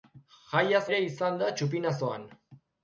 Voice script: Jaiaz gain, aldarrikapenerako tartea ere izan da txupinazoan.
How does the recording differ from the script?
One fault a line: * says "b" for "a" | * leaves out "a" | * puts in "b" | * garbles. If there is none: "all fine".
* leaves out "gain aldarrikapenerako tartea"